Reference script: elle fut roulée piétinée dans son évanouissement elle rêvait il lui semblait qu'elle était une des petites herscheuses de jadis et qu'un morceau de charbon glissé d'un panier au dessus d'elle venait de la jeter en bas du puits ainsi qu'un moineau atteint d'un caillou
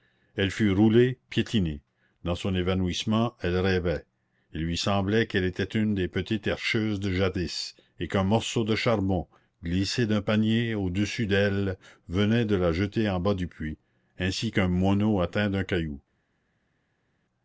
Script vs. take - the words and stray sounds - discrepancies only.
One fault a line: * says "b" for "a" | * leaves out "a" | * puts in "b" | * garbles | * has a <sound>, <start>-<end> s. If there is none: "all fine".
all fine